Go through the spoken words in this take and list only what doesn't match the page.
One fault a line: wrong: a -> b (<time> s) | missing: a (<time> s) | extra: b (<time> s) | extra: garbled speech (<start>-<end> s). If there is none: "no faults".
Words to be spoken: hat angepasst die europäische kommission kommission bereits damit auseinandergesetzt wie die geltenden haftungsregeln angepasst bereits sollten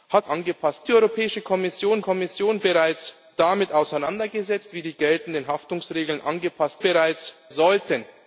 no faults